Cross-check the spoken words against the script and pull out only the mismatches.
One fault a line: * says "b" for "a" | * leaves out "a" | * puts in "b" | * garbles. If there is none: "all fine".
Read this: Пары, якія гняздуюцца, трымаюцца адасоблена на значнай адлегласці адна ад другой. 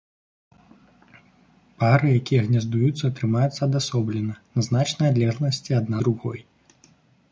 * leaves out "ад"